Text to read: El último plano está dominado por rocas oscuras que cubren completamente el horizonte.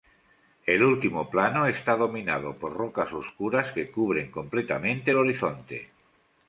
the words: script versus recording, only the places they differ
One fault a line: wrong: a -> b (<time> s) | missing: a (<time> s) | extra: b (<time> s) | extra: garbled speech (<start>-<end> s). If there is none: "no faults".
no faults